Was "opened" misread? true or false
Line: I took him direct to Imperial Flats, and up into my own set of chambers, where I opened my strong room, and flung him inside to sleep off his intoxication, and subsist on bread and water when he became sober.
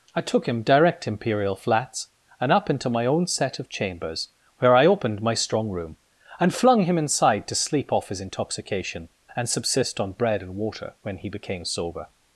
false